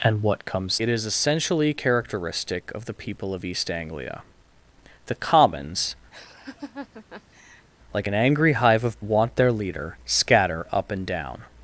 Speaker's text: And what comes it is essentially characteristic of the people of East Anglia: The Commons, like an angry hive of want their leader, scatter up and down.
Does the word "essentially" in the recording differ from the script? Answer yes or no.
no